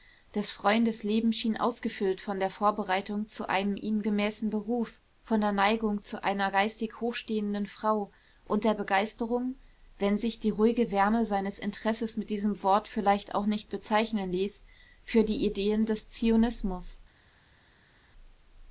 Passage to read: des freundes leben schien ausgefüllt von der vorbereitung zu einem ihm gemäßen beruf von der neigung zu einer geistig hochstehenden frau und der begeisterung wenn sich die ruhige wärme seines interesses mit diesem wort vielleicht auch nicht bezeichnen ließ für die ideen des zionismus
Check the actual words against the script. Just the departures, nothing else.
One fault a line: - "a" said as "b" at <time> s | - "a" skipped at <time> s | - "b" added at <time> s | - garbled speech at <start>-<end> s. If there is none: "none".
none